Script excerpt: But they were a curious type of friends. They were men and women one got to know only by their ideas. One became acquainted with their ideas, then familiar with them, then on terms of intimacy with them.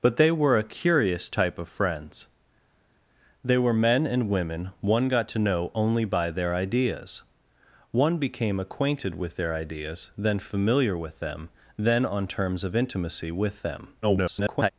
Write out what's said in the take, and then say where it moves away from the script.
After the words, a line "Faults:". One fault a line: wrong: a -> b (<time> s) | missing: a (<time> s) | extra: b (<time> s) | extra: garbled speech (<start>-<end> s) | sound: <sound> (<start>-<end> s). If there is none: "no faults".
But they were a curious type of friends. They were men and women one got to know only by their ideas. One became acquainted with their ideas, then familiar with them, then on terms of intimacy with them. [garbled]
Faults:
extra: garbled speech (14.0-14.7 s)